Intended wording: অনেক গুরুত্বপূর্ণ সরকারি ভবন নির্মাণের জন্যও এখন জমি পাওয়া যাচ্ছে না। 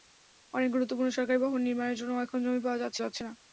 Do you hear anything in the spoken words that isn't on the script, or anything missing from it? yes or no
yes